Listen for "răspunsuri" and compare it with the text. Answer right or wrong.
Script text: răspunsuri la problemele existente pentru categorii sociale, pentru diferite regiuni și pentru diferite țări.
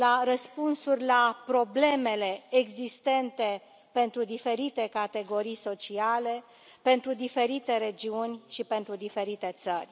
right